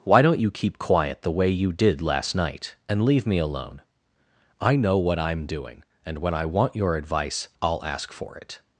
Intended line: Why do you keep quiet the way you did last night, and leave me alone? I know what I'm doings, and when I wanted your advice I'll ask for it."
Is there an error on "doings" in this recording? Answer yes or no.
yes